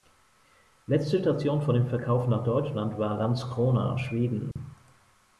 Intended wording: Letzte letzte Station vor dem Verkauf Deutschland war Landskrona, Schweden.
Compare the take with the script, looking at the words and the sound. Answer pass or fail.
fail